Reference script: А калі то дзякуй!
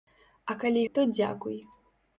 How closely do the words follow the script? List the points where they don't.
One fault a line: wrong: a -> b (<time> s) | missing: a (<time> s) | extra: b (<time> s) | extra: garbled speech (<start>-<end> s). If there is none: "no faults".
no faults